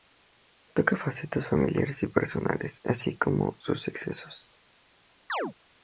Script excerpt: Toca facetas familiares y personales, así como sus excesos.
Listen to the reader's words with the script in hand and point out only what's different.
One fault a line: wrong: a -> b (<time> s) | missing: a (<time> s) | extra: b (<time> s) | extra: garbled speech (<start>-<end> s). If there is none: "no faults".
no faults